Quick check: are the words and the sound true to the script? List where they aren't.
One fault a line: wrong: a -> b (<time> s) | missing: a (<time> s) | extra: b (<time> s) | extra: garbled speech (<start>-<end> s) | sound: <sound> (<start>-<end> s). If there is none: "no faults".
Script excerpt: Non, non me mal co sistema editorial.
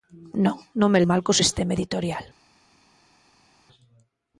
no faults